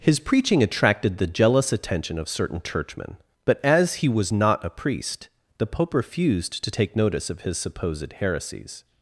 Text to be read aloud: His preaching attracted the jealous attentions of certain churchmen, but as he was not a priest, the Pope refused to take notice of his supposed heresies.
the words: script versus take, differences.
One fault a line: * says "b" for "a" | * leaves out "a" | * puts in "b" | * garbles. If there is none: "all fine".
* says "attention" for "attentions"